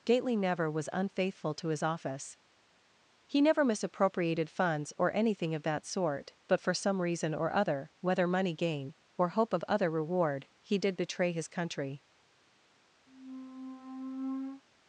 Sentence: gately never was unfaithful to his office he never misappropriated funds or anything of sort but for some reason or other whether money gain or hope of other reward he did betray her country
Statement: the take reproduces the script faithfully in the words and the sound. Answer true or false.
false